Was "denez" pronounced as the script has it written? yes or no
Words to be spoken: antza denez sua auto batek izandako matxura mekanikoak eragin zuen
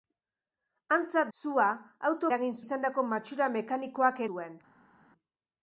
no